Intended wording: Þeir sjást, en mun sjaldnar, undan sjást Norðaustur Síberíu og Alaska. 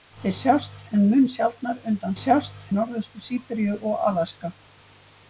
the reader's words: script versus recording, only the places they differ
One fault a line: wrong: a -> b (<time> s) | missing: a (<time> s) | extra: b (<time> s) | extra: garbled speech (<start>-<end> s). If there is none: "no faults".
no faults